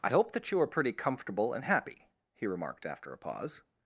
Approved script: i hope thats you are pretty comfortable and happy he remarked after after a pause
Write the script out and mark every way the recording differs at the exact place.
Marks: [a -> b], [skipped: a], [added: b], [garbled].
i hope [thats -> that] you are pretty comfortable and happy he remarked after [skipped: after] a pause